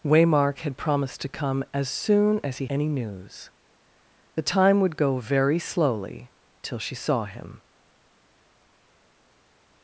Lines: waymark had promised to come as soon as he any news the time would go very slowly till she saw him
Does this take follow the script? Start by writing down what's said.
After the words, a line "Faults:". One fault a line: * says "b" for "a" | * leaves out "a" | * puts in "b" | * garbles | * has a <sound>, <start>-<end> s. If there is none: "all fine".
waymark had promised to come as soon as he any news the time would go very slowly till she saw him
Faults:
all fine